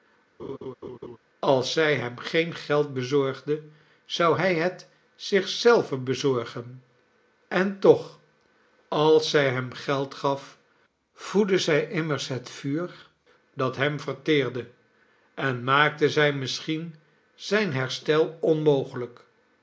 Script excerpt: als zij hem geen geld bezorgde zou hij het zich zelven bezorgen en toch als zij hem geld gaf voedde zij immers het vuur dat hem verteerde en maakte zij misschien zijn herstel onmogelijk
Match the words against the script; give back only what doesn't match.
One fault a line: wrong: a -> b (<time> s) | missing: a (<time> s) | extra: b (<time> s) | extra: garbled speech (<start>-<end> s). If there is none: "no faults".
no faults